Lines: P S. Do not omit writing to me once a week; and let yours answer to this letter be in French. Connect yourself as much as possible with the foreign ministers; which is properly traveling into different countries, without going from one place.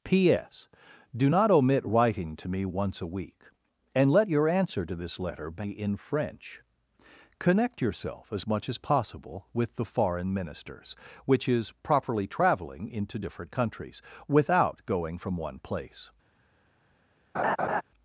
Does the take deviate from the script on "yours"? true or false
true